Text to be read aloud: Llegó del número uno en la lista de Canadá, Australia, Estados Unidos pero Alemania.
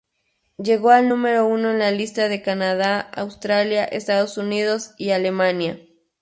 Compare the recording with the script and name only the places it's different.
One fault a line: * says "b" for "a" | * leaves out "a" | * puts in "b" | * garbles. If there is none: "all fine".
* says "al" for "del"
* says "y" for "pero"